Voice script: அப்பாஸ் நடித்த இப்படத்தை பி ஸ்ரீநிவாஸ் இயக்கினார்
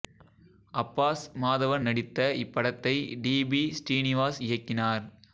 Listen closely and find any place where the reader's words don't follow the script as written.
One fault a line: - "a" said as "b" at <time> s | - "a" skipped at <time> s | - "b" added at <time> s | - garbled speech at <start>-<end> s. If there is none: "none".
- "மாதவன்" added at 1.4 s
- "டி" added at 3.2 s